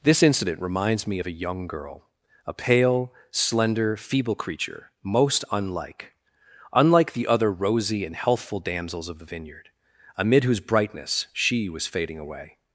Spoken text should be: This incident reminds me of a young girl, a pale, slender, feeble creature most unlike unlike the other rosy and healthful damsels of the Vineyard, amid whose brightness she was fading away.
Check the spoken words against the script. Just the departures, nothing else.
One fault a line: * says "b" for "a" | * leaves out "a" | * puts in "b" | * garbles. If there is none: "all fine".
all fine